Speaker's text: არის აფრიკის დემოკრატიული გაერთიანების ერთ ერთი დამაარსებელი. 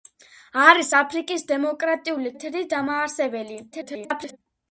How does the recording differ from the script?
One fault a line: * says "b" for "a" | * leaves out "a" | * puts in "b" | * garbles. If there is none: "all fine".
* leaves out "გაერთიანების"
* garbles